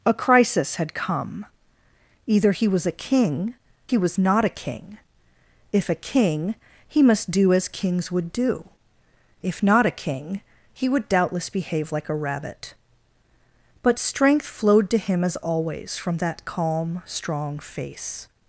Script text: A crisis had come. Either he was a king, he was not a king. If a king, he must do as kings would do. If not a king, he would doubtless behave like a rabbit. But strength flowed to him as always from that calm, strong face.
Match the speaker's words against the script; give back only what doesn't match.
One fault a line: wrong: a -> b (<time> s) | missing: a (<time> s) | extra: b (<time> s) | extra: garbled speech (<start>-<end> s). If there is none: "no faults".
no faults